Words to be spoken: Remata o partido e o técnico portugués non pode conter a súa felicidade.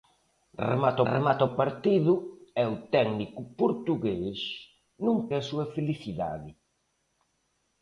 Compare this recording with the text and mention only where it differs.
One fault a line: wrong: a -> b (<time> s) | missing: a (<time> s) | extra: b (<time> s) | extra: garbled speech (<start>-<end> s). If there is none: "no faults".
extra: remata (1.1 s)
missing: pode conter (5.2 s)